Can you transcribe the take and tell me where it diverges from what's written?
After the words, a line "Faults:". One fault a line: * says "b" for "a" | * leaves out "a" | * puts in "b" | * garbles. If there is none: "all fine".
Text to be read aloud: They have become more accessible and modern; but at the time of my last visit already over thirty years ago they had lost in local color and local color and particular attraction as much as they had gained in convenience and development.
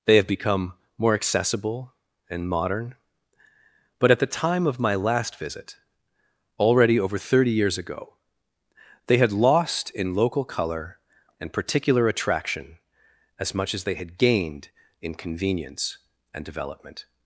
They have become more accessible and modern; but at the time of my last visit already over thirty years ago they had lost in local color and particular attraction as much as they had gained in convenience and development.
Faults:
* leaves out "local color and"